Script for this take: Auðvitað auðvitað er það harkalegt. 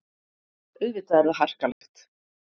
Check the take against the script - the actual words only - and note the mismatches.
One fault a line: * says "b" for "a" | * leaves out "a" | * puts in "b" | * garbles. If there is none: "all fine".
* leaves out "auðvitað"